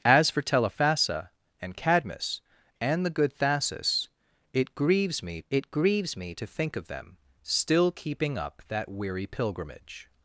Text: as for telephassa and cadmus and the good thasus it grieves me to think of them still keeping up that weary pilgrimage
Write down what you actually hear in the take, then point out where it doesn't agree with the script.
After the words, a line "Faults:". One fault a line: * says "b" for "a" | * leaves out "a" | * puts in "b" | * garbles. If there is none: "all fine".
as for telephassa and cadmus and the good thasus it grieves me it grieves me to think of them still keeping up that weary pilgrimage
Faults:
* puts in "it grieves me"